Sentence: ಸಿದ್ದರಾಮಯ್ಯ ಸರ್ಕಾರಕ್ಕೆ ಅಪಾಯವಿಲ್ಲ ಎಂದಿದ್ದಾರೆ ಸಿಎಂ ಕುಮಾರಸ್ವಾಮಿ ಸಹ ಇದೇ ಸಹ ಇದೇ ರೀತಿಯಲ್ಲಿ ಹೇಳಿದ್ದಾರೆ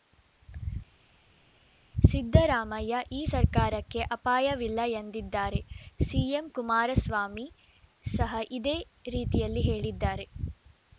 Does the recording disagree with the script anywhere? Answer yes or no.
yes